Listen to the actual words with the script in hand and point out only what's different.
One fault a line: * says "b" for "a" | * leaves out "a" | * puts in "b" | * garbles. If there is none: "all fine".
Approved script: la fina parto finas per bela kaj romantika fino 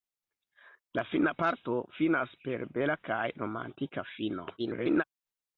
* garbles